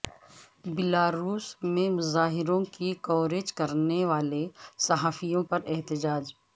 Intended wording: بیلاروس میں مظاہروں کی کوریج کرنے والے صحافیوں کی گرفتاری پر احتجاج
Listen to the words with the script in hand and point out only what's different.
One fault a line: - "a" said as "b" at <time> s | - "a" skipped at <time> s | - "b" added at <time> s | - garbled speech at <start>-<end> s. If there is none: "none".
- "کی گرفتاری" skipped at 5.4 s